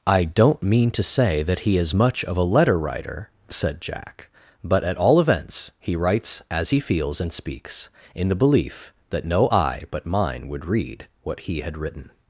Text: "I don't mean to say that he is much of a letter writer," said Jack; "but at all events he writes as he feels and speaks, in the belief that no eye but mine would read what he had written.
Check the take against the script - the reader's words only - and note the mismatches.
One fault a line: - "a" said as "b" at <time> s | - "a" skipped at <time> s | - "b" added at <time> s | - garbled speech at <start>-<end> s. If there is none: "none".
none